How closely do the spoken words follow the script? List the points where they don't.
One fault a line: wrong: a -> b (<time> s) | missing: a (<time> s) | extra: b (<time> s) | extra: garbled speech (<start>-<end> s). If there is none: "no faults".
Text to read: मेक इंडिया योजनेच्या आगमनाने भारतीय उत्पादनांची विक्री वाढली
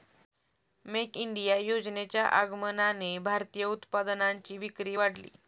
no faults